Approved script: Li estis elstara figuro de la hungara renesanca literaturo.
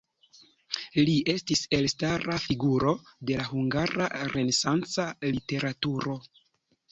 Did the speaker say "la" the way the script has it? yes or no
yes